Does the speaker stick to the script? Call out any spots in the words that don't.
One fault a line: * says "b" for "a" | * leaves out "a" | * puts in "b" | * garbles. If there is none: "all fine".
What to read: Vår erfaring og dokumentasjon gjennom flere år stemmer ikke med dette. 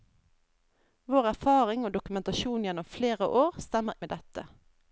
* leaves out "ikke"